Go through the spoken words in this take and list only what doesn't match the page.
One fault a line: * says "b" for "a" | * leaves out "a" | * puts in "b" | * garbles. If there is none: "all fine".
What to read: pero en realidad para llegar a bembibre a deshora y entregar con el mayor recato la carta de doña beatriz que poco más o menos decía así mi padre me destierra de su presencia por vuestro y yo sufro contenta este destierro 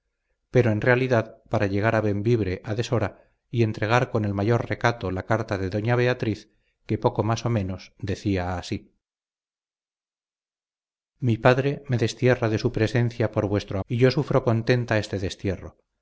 all fine